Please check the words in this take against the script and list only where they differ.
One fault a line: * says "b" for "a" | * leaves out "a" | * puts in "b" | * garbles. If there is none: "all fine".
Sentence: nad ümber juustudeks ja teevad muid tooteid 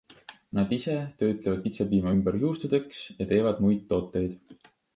* puts in "ise töötlevad kitsepiima"